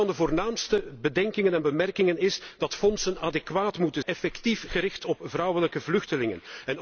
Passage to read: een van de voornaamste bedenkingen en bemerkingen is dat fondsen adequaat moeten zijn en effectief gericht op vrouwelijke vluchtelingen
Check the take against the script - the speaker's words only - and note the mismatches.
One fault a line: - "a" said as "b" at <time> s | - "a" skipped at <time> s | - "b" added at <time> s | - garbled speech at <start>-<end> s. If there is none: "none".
- "zijn en" skipped at 4.0 s